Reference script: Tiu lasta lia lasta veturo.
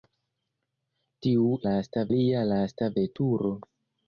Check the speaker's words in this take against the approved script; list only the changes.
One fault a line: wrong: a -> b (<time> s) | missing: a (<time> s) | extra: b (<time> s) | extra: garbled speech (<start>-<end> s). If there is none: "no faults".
no faults